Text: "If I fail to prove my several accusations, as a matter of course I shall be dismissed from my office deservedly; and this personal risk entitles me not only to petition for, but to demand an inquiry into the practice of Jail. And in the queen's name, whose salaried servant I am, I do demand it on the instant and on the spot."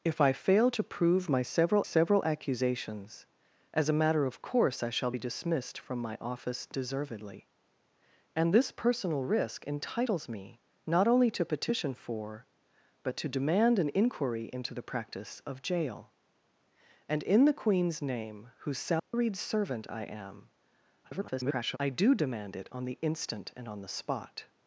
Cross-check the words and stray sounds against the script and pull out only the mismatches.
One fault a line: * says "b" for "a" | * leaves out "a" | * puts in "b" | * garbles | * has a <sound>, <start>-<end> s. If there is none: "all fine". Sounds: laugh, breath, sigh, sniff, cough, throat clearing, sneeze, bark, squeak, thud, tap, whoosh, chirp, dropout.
* puts in "several"
* has a dropout, 19.0-19.1 s
* garbles